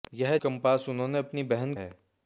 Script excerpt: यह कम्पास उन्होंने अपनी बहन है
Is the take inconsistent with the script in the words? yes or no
no